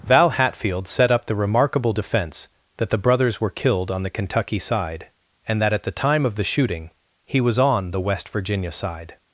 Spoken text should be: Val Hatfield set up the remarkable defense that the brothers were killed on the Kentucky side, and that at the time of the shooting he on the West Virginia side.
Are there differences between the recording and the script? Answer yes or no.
yes